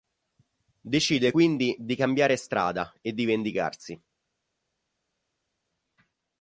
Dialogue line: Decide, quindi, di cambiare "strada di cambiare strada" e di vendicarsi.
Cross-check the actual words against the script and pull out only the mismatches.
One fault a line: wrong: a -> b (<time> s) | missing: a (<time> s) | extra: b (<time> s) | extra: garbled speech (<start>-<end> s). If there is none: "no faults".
missing: di cambiare strada (2.9 s)